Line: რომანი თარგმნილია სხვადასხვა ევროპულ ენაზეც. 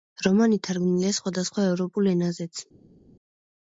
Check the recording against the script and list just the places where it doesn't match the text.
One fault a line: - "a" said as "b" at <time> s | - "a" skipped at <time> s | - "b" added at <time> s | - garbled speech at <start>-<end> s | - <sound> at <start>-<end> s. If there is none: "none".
none